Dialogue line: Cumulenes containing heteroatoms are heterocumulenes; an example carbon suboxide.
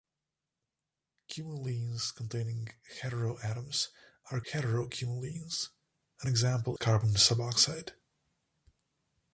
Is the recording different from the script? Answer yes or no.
no